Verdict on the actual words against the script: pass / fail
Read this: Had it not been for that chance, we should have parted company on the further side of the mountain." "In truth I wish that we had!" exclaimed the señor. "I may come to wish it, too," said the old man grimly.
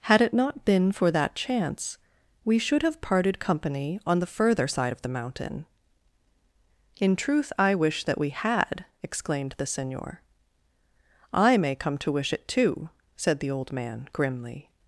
pass